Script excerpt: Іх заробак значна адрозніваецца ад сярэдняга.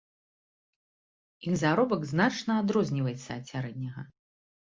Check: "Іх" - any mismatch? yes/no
no